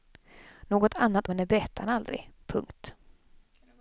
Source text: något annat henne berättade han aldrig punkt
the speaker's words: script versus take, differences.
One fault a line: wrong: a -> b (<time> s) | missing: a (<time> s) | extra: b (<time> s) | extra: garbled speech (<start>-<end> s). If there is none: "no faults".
no faults